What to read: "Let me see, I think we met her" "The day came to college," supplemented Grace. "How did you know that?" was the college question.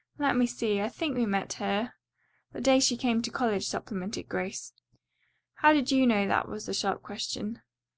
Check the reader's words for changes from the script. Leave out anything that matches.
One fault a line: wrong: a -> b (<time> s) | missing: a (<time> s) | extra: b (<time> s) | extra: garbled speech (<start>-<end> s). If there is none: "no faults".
extra: she (2.8 s)
wrong: college -> sharp (6.7 s)